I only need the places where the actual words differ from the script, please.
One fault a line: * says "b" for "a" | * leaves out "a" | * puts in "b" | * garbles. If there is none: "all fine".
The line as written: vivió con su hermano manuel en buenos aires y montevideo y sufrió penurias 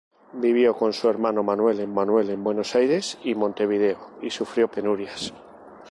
* puts in "manuel en"